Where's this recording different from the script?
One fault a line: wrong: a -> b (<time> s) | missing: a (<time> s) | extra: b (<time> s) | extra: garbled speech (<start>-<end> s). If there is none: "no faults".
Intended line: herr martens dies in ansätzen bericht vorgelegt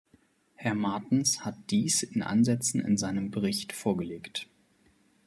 extra: hat (1.4 s)
extra: in seinem (2.8 s)